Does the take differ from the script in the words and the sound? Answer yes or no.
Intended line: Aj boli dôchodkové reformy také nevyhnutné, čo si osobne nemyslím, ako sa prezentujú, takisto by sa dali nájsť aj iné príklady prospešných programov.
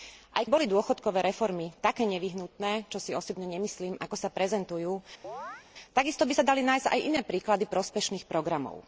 yes